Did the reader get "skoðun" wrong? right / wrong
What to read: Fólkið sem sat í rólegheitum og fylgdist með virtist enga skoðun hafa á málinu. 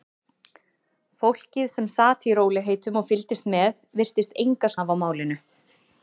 wrong